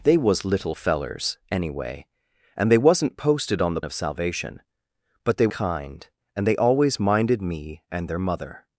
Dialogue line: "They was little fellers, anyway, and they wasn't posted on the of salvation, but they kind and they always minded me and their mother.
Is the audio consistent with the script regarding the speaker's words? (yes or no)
yes